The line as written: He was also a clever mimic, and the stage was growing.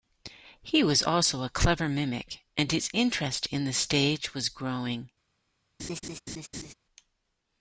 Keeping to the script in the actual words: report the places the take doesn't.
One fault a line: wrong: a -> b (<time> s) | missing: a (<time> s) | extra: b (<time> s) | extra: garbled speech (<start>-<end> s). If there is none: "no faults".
extra: his interest in (2.7 s)